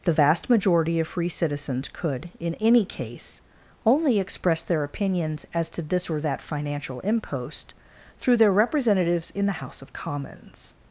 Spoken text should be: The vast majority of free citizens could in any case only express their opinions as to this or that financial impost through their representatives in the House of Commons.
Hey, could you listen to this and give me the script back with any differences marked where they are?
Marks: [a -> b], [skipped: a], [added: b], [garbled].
The vast majority of free citizens could in any case only express their opinions as to this or that financial impost through their representatives in the House of Commons.